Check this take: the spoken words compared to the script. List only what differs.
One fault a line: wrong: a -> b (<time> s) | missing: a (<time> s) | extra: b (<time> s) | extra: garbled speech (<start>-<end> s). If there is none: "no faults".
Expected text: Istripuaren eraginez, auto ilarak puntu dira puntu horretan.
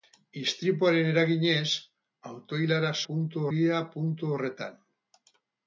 no faults